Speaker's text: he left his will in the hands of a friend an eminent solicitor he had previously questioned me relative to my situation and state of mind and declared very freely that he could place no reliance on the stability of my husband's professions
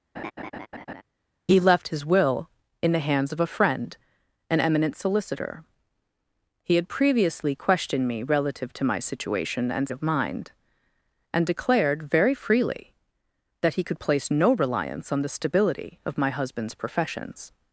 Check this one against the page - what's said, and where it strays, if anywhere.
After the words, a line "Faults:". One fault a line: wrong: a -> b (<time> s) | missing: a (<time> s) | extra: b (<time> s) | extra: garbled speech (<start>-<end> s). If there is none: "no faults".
he left his will in the hands of a friend an eminent solicitor he had previously questioned me relative to my situation and of mind and declared very freely that he could place no reliance on the stability of my husband's professions
Faults:
missing: state (9.9 s)